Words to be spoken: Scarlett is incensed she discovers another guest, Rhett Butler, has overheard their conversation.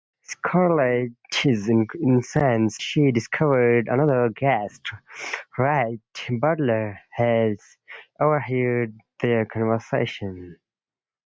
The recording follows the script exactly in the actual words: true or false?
true